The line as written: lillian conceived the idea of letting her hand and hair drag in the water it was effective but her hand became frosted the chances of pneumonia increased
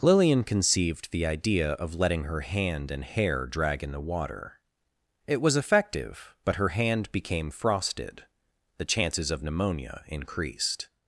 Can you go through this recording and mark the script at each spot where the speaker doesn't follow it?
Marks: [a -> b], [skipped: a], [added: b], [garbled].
lillian conceived the idea of letting her hand and hair drag in the water it was effective but her hand became frosted the chances of pneumonia increased